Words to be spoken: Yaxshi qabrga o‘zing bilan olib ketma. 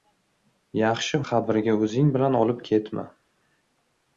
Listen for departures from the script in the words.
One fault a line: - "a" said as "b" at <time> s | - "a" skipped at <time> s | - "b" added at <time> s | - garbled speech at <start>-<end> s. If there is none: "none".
none